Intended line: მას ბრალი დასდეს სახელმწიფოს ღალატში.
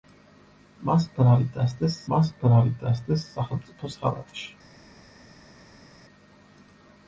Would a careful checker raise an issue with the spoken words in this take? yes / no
yes